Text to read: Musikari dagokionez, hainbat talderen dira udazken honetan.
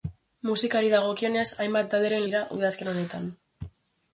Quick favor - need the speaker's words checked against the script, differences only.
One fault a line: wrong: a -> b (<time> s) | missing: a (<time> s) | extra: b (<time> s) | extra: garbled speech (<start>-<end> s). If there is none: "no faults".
no faults